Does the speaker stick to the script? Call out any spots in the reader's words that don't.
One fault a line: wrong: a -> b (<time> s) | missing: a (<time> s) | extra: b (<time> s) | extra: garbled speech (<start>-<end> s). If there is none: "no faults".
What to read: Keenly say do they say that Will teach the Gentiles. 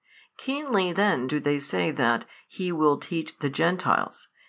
wrong: say -> then (0.9 s)
extra: He (2.5 s)